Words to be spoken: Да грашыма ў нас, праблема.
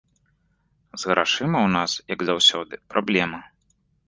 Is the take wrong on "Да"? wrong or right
wrong